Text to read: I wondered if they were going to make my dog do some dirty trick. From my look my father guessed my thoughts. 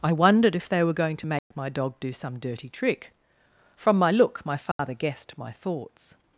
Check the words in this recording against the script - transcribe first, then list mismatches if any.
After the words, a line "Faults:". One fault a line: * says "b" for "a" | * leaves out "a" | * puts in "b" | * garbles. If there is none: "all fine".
I wondered if they were going to make my dog do some dirty trick. From my look my father guessed my thoughts.
Faults:
all fine